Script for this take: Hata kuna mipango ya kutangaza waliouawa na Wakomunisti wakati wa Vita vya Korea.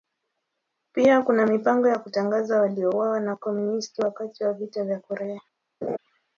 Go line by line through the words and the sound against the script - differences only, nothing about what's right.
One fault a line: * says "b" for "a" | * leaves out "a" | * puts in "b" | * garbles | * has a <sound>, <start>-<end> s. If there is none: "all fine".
* says "Pia" for "Hata"
* has a laugh, 5.8-6.0 s